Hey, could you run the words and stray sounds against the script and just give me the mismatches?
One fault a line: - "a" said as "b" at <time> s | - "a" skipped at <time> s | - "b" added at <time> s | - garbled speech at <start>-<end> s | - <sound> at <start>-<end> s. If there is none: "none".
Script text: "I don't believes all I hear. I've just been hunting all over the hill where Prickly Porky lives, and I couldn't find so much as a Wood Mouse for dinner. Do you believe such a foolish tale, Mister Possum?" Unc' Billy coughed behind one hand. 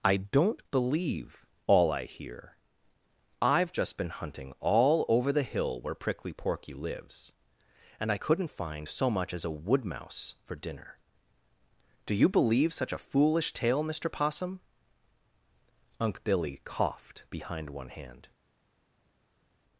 - "believes" said as "believe" at 0.7 s